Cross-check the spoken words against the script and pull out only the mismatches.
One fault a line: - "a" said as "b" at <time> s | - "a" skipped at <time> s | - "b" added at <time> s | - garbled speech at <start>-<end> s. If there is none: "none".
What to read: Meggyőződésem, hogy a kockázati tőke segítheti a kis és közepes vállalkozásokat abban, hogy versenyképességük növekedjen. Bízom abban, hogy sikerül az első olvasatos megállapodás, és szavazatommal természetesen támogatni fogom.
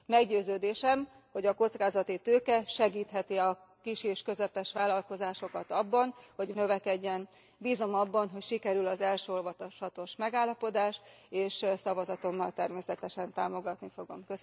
- "versenyképességük" skipped at 6.5 s